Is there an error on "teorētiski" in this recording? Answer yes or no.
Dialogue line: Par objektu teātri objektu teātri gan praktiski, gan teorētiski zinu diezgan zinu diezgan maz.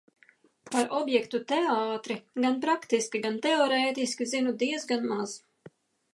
no